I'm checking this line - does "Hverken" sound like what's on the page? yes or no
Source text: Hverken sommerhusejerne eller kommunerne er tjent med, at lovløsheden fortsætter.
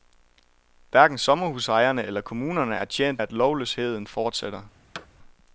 yes